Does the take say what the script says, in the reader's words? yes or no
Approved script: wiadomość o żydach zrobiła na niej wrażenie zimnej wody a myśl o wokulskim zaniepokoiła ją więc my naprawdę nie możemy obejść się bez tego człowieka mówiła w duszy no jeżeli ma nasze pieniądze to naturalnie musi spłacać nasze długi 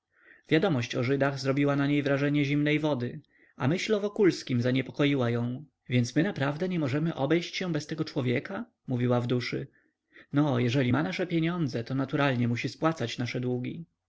yes